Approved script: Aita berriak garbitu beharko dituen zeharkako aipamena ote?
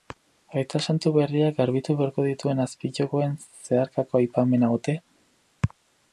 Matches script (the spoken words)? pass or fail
fail